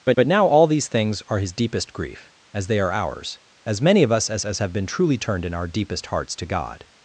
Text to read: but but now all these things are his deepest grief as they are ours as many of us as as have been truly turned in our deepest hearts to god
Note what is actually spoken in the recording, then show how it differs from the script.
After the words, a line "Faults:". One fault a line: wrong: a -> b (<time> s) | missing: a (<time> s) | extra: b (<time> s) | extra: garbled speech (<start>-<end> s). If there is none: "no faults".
but but now all these things are his deepest grief as they are ours as many of us as as have been truly turned in our deepest hearts to god
Faults:
no faults